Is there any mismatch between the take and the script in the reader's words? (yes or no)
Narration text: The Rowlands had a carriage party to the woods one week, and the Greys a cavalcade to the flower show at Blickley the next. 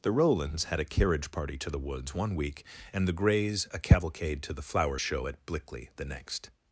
no